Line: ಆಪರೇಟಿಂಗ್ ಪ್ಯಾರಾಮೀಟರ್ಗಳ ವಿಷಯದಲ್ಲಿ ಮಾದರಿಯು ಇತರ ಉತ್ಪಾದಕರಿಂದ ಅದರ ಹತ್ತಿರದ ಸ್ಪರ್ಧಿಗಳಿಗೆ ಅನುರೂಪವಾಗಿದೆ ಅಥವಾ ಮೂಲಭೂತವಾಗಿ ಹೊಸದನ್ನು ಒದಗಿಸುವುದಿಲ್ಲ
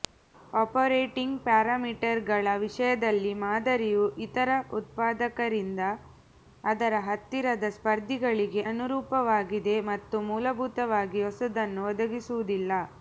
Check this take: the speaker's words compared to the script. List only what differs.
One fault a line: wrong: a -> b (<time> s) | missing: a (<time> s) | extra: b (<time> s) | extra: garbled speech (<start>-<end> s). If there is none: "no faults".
wrong: ಅಥವಾ -> ಮತ್ತು (9.9 s)